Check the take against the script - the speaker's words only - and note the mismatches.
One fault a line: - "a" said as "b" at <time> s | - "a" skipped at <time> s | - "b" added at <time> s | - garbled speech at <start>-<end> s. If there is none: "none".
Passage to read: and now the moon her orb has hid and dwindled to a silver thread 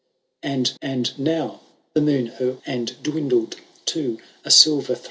- "and" added at 0.8 s
- "orb has hid" skipped at 2.6 s